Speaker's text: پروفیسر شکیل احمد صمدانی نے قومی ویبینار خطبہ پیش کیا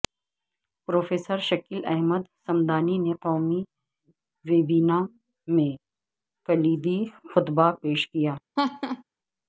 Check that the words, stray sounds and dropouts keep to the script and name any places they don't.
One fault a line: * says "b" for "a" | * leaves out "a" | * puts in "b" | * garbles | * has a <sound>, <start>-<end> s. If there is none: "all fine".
* puts in "میں کلیدی"
* has a laugh, 8.6-9.0 s